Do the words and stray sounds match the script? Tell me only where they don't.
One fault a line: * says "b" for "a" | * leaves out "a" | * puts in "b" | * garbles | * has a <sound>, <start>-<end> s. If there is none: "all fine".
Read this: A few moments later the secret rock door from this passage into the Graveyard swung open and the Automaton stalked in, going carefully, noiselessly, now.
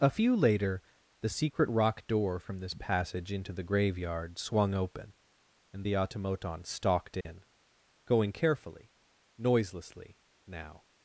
* leaves out "moments"
* has a dropout, 7.2-7.3 s